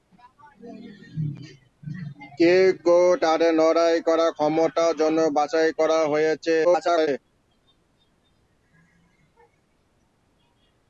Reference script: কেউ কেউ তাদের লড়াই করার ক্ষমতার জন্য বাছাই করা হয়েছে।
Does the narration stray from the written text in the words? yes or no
yes